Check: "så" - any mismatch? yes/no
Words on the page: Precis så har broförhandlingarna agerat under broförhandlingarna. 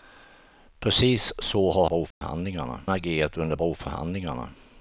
no